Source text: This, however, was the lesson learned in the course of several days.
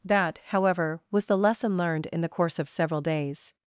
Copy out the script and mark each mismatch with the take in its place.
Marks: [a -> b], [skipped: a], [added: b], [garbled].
[This, -> That] however, was the lesson learned in the course of several days.